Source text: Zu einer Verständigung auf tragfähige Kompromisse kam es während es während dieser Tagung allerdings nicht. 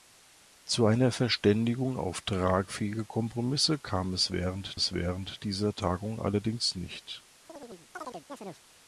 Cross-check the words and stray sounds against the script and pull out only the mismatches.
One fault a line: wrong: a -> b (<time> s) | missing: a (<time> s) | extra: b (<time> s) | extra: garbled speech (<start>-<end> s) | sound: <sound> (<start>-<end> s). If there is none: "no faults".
sound: chirp (7.5-8.7 s)